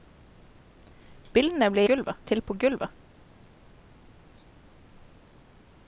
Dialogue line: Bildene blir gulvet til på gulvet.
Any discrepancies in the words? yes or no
no